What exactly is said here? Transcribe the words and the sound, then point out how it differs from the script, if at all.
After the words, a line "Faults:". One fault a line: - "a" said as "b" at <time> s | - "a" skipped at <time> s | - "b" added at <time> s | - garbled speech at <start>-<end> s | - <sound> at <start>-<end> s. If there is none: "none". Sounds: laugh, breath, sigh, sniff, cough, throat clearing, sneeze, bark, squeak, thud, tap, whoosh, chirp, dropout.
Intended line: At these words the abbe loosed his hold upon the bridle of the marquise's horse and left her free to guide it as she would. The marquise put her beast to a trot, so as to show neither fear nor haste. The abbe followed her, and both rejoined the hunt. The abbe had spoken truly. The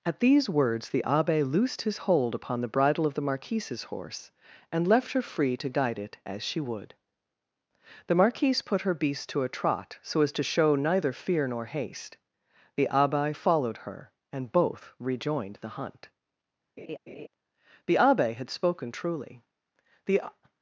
At these words the abbe loosed his hold upon the bridle of the marquise's horse and left her free to guide it as she would. The marquise put her beast to a trot, so as to show neither fear nor haste. The abbe followed her, and both rejoined the hunt. The abbe had spoken truly. The
Faults:
- laugh at 16.8-17.3 s